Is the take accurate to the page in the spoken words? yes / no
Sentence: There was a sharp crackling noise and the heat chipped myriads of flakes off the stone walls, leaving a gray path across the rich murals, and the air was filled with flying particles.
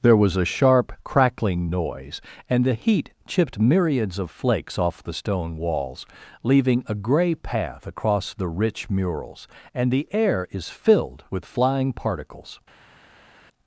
no